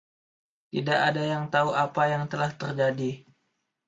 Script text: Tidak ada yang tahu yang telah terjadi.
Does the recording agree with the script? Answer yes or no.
no